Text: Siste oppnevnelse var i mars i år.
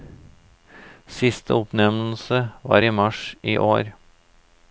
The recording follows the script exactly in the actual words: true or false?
true